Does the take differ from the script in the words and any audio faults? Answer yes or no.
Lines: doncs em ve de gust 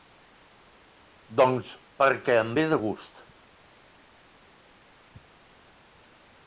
yes